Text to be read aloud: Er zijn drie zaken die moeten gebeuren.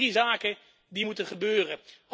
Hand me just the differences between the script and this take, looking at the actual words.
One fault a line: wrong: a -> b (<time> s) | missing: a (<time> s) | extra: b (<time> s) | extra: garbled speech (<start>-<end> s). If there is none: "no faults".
no faults